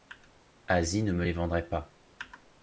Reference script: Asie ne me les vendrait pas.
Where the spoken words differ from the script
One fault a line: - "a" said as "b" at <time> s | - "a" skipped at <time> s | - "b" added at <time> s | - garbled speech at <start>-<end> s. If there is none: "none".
none